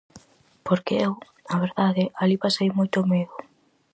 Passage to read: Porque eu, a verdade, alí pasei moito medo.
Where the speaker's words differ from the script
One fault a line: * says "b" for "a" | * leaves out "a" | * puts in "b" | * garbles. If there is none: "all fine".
all fine